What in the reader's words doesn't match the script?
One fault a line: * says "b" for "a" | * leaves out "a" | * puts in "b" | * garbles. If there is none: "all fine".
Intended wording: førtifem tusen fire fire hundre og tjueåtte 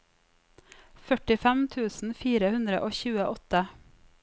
* leaves out "fire"